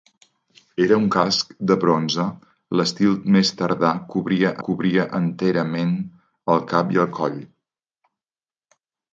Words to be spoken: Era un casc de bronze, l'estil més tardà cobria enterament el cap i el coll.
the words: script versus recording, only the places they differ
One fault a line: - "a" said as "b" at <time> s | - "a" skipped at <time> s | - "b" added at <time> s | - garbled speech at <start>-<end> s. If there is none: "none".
- "cobria" added at 4.7 s